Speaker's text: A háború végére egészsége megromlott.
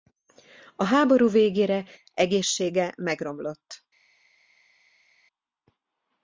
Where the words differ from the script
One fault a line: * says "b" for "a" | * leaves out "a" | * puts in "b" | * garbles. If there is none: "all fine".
all fine